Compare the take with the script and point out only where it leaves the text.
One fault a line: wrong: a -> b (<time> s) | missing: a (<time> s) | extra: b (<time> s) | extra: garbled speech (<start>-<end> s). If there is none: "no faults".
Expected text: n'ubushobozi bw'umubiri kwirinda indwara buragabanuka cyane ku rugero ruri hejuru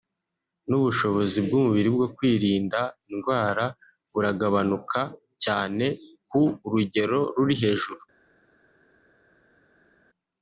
extra: bwo (1.9 s)